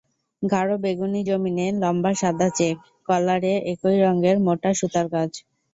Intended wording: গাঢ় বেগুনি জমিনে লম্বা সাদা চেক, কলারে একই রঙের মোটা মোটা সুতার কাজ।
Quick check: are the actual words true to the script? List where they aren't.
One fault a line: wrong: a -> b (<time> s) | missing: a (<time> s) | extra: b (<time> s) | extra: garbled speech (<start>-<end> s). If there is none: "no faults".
missing: মোটা (4.7 s)